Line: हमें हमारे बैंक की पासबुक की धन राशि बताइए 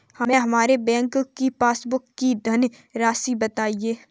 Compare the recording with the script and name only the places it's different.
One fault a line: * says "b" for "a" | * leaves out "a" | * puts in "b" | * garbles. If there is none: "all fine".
all fine